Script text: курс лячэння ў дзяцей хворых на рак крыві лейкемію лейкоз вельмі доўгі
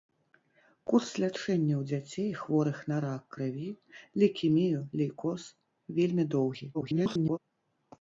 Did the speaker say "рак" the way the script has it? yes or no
yes